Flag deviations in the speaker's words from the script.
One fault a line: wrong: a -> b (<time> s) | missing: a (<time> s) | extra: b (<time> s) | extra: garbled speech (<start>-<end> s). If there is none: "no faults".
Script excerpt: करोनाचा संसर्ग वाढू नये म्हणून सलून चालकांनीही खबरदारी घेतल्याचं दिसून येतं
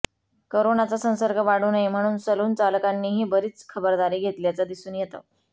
extra: बरीच (3.3 s)